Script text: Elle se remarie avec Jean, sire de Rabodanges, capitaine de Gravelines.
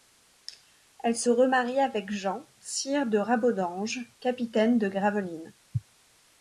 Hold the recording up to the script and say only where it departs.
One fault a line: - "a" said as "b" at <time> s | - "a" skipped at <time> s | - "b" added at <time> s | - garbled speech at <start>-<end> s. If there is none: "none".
none